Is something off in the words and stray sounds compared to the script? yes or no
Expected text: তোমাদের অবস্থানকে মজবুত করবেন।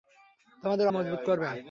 yes